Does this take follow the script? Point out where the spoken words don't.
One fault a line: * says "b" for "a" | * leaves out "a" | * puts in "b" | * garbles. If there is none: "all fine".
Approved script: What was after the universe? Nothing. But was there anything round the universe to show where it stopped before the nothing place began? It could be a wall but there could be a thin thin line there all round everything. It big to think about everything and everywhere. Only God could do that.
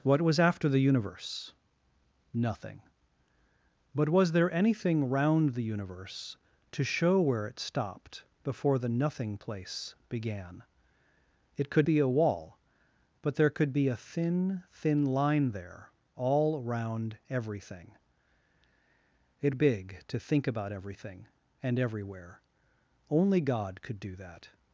all fine